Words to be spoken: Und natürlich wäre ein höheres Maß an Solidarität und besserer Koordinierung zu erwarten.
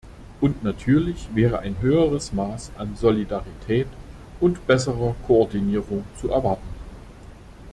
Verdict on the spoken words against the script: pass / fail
pass